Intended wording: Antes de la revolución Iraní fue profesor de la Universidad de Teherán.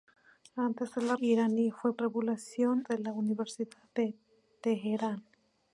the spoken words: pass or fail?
fail